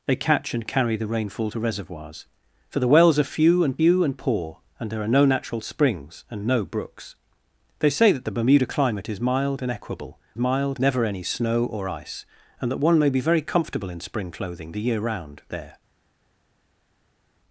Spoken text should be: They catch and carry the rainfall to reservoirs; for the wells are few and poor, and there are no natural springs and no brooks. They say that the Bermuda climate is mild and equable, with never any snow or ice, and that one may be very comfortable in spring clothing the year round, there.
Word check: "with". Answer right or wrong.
wrong